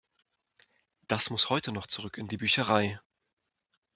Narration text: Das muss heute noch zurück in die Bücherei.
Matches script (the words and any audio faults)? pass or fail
pass